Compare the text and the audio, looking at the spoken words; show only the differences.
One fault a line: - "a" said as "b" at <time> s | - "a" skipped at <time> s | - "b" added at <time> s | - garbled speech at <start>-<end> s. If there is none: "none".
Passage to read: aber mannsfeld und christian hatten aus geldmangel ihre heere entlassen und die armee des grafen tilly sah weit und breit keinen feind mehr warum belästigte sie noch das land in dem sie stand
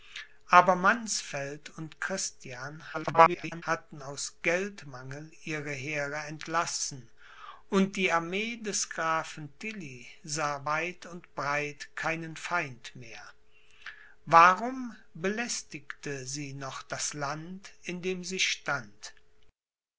- garbled speech at 2.9-3.6 s